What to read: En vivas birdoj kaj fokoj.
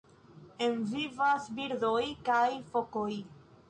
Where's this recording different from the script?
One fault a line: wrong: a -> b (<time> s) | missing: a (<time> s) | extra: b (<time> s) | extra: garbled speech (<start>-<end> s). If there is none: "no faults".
no faults